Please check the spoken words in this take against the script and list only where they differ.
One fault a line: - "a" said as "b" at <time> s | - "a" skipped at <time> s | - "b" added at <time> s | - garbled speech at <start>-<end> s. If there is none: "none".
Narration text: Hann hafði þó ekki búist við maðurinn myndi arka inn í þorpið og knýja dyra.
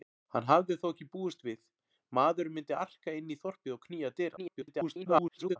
- garbled speech at 4.4-5.6 s